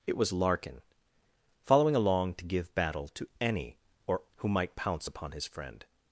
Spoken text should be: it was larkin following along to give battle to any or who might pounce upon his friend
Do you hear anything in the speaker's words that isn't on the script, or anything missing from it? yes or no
no